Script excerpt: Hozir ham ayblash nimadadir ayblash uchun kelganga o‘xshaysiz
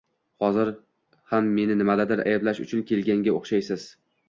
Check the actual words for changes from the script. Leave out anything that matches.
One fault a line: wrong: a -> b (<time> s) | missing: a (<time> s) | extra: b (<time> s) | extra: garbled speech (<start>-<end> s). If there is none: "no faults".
wrong: ayblash -> meni (1.6 s)